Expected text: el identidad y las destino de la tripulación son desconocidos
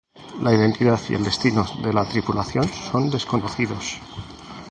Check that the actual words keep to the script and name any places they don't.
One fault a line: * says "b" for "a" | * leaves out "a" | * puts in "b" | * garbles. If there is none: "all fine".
* says "la" for "el"
* says "el" for "las"